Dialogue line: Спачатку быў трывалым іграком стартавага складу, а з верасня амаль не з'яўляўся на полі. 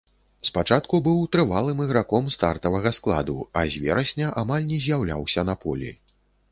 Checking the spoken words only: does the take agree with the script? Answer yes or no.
yes